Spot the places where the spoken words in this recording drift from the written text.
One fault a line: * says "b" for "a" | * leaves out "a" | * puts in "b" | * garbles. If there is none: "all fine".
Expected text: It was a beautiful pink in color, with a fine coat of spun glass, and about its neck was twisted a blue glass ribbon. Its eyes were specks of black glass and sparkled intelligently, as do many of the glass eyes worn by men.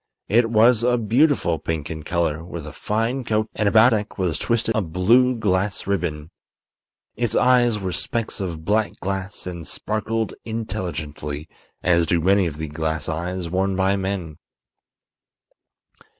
* leaves out "of spun glass"
* leaves out "its"